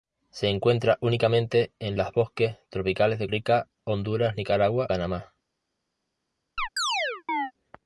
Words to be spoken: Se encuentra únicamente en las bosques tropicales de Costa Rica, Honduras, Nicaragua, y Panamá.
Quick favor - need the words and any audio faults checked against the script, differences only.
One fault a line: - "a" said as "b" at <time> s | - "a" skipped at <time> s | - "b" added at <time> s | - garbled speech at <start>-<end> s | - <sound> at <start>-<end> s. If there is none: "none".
- "Costa" skipped at 3.3 s
- "y" skipped at 4.9 s
- chirp at 6.6-7.5 s